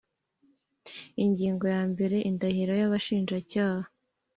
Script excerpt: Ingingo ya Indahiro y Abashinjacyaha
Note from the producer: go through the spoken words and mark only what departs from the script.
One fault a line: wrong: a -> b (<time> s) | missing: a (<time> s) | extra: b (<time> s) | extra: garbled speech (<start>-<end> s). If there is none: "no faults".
extra: mbere (1.9 s)